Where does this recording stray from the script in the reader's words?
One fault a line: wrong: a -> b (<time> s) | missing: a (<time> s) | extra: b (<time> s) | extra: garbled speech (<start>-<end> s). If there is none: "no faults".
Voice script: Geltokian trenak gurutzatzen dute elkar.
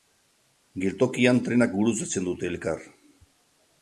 no faults